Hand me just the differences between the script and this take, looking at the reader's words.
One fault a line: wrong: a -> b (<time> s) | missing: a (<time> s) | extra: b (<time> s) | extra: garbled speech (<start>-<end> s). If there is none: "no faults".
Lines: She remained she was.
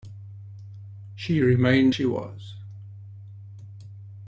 no faults